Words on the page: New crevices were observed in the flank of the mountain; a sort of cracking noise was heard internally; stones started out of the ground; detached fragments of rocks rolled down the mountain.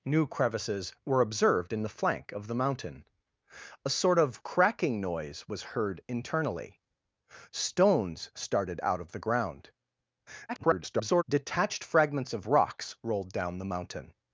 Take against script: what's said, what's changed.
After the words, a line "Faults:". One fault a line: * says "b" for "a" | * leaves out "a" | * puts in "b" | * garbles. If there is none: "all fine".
New crevices were observed in the flank of the mountain; a sort of cracking noise was heard internally; stones started out of the ground; [garbled] detached fragments of rocks rolled down the mountain.
Faults:
* garbles